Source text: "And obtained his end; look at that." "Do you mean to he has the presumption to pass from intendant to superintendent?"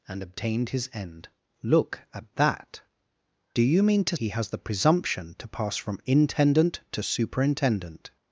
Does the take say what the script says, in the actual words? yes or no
yes